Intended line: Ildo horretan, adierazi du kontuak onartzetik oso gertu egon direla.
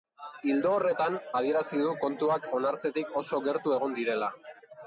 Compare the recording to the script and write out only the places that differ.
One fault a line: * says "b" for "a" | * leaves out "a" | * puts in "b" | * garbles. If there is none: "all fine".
all fine